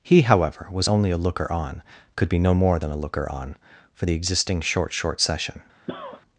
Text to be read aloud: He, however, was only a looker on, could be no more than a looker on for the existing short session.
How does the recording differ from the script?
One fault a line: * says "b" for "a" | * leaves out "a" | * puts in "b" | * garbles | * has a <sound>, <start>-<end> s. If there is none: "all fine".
* puts in "short"
* has a cough, 5.9-6.2 s